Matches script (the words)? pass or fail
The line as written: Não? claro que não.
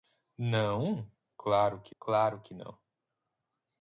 fail